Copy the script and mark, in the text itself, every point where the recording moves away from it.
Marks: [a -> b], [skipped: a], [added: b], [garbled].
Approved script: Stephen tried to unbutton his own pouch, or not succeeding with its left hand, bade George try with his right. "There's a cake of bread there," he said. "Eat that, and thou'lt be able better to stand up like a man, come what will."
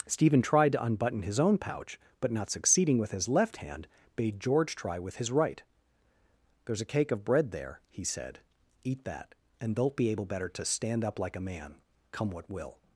Stephen tried to unbutton his own pouch, [or -> but] not succeeding with [its -> his] left hand, bade George try with his right. "There's a cake of bread there," he said. "Eat that, and thou'lt be able better to stand up like a man, come what will."